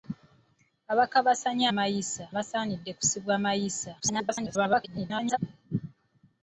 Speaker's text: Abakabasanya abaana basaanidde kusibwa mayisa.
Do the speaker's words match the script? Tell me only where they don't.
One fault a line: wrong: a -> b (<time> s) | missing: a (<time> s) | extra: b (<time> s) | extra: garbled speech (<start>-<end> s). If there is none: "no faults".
wrong: abaana -> mayisa (1.8 s)
extra: garbled speech (4.0-5.4 s)